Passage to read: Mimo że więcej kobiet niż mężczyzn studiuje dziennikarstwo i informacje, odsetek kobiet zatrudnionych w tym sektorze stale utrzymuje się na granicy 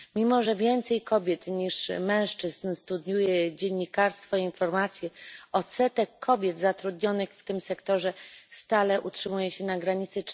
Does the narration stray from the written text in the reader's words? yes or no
no